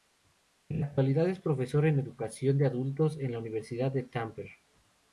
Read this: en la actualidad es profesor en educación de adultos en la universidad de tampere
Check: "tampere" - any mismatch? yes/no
no